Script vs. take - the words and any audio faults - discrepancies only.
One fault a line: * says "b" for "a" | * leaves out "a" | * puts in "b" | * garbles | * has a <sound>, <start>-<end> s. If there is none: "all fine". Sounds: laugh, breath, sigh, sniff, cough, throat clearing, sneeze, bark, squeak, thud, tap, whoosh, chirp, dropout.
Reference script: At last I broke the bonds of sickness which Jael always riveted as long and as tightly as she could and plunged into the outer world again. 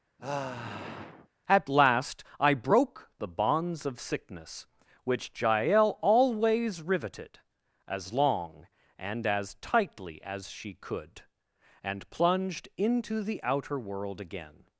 * has a sigh, 0.2-1.3 s